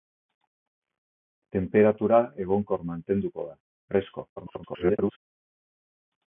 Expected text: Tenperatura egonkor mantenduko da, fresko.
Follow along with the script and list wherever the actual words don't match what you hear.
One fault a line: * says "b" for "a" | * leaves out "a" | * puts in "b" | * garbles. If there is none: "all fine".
* garbles